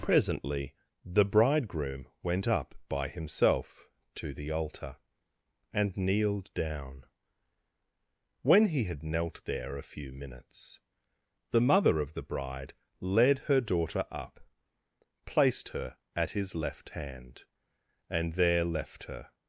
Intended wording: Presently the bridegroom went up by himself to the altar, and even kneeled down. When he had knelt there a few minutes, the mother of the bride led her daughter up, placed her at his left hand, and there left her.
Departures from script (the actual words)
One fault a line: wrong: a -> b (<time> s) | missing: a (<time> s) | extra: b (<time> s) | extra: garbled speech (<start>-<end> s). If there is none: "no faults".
missing: even (6.0 s)